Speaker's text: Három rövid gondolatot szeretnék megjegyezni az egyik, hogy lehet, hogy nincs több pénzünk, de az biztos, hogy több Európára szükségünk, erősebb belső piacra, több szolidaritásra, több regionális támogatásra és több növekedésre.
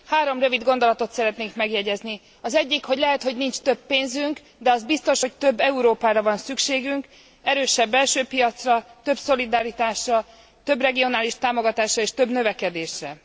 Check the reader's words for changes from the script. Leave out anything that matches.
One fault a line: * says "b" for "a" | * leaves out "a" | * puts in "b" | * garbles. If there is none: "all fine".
* puts in "van"